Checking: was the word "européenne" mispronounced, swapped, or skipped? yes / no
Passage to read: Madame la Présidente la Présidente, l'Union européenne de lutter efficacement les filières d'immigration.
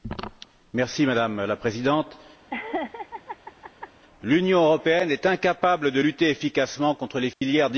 yes